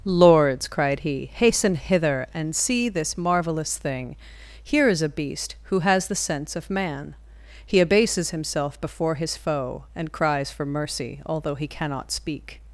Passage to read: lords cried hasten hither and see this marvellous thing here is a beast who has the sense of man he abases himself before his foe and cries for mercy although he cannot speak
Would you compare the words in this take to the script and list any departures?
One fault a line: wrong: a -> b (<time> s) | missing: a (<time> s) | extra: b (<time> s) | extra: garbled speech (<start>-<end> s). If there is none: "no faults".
extra: he (1.0 s)